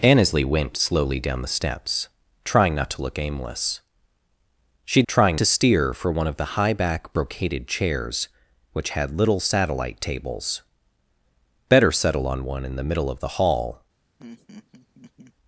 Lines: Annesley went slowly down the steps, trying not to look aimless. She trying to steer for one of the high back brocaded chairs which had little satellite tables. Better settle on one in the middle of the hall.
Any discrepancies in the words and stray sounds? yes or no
yes